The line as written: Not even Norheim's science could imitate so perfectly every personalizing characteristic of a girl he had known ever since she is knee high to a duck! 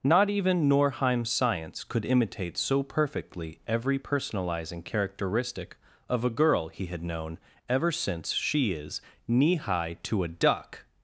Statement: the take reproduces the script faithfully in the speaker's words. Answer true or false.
true